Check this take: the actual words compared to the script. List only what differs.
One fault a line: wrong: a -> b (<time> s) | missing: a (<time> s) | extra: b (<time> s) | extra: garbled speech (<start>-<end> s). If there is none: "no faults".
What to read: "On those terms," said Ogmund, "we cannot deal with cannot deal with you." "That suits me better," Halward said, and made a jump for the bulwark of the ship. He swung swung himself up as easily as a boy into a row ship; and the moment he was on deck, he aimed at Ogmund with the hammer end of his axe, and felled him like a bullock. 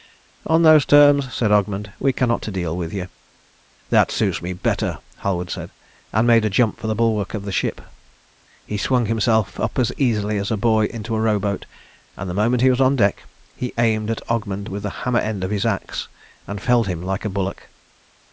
missing: cannot deal with (2.9 s)
missing: swung (9.1 s)
wrong: ship -> boat (11.4 s)